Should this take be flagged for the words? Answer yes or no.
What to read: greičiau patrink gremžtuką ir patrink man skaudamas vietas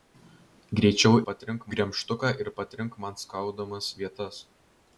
no